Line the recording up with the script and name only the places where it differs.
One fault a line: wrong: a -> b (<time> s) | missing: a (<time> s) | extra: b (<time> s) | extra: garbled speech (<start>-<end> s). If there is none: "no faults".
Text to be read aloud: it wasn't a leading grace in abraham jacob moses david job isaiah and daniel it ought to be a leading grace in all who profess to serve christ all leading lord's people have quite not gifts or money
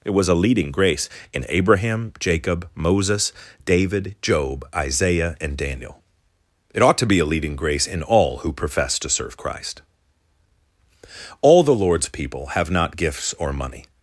wrong: wasn't -> was (0.1 s)
wrong: leading -> the (11.6 s)
missing: quite (12.7 s)